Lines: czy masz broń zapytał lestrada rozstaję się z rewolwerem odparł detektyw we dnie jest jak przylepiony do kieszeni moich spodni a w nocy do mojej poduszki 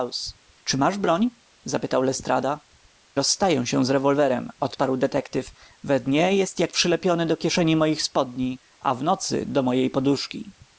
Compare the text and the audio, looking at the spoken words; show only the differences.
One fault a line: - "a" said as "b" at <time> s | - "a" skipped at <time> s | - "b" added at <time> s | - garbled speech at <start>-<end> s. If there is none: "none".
none